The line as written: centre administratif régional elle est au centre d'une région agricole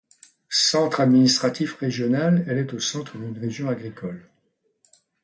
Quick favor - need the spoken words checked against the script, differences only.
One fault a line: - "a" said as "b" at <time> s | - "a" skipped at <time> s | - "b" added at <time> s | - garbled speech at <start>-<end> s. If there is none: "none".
none